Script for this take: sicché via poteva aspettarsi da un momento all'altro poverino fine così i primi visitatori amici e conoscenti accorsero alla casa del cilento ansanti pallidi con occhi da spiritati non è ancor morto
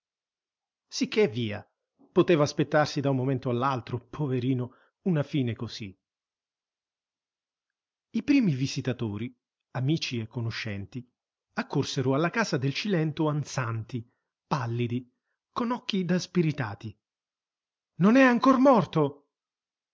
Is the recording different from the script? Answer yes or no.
yes